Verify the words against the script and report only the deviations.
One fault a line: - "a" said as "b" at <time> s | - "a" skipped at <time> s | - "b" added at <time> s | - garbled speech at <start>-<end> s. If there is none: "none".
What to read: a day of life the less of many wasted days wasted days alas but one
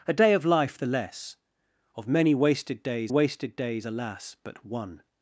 none